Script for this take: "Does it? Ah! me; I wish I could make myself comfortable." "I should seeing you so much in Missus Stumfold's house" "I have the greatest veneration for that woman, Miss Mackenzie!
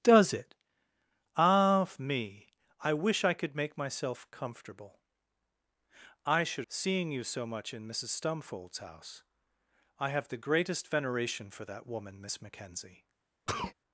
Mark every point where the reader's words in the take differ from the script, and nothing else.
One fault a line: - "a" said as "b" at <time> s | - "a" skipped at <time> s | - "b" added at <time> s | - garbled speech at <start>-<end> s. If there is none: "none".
none